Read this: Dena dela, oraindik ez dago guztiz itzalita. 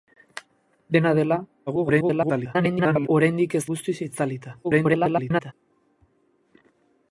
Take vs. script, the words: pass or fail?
fail